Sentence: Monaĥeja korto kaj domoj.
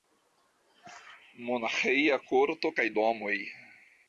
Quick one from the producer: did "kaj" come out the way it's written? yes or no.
yes